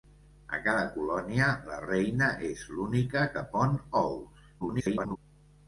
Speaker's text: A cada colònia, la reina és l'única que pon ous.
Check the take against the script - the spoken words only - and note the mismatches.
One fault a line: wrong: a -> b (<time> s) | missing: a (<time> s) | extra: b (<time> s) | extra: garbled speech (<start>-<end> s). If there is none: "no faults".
extra: garbled speech (4.6-5.2 s)